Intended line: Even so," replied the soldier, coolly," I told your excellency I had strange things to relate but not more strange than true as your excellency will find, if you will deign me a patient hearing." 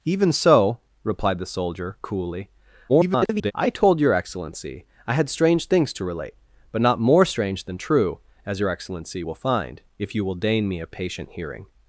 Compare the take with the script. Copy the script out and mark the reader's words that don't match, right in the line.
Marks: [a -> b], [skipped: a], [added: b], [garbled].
Even so," replied the soldier, coolly," [garbled] I told your excellency I had strange things to relate but not more strange than true as your excellency will find, if you will deign me a patient hearing."